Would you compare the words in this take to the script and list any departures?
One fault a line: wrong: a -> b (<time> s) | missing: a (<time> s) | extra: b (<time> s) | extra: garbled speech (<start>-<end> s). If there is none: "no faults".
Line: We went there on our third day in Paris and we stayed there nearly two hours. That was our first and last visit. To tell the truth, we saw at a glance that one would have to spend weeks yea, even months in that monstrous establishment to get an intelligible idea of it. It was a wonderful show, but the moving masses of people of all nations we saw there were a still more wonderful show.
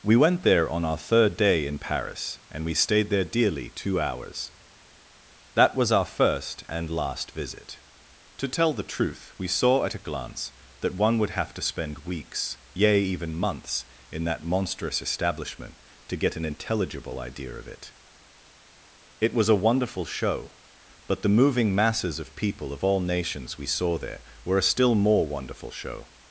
wrong: nearly -> dearly (3.4 s)